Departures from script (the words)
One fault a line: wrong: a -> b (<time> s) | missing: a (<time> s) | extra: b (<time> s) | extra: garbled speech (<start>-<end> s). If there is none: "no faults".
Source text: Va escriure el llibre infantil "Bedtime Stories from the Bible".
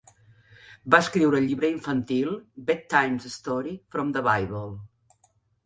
no faults